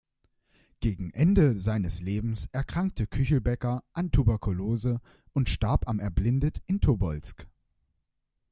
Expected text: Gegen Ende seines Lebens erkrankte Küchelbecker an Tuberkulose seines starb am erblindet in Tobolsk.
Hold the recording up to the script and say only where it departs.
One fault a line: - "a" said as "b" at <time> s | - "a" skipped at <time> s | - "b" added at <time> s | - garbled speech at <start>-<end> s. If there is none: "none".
- "seines" said as "und" at 5.3 s